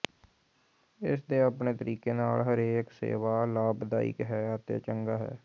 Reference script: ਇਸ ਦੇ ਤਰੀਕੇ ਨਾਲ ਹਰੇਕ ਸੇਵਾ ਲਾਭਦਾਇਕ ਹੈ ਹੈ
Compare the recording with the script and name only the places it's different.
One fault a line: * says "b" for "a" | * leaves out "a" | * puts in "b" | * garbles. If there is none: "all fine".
* puts in "ਆਪਣੇ"
* puts in "ਅਤੇ ਚੰਗਾ"